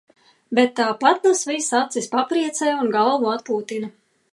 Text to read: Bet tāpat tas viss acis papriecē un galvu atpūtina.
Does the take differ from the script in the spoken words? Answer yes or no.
no